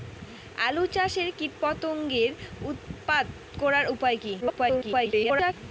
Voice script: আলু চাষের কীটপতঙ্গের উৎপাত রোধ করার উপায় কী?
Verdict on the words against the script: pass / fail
fail